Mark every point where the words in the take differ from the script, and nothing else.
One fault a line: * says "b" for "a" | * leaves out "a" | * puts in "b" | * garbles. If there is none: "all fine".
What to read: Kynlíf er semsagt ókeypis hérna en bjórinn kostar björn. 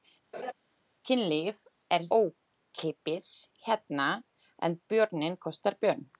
* leaves out "semsagt"